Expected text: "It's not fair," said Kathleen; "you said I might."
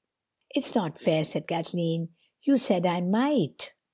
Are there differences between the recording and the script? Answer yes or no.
no